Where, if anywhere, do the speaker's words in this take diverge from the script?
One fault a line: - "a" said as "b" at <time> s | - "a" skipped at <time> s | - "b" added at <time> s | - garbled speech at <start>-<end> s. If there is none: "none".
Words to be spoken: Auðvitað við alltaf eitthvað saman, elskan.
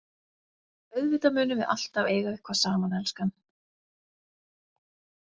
- "munum" added at 1.4 s
- "eiga" added at 2.1 s